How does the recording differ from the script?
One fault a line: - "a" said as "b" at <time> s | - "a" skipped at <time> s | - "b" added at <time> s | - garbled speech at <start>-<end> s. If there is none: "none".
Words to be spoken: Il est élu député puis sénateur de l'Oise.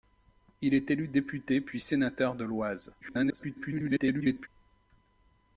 - garbled speech at 3.0-4.5 s